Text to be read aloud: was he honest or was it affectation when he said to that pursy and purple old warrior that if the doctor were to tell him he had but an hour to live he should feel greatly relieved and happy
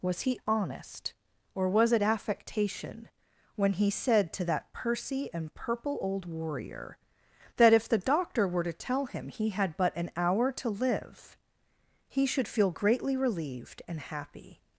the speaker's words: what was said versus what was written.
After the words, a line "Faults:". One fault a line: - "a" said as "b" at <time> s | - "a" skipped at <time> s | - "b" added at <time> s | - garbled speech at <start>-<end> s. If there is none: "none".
was he honest or was it affectation when he said to that pursy and purple old warrior that if the doctor were to tell him he had but an hour to live he should feel greatly relieved and happy
Faults:
none